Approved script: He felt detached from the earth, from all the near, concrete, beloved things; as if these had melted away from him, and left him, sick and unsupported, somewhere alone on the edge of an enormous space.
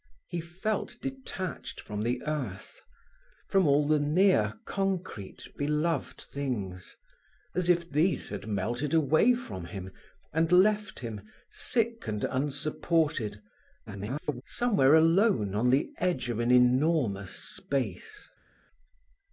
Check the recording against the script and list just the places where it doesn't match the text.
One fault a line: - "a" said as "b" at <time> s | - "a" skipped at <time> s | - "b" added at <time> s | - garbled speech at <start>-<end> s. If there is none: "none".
- garbled speech at 13.9-14.4 s